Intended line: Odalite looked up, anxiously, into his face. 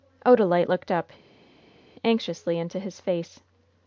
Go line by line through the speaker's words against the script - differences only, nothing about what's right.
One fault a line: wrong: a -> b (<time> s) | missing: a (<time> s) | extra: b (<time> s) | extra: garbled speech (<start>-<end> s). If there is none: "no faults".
no faults